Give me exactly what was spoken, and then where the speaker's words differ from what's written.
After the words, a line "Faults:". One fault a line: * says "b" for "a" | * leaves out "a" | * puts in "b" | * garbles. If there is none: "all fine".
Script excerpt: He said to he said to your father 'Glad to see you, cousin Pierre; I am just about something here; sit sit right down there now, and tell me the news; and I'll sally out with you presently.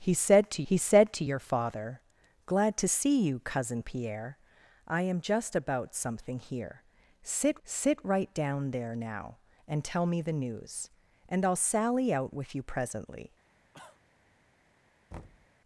He said to he said to your father 'Glad to see you, cousin Pierre; I am just about something here; sit sit right down there now, and tell me the news; and I'll sally out with you presently.
Faults:
all fine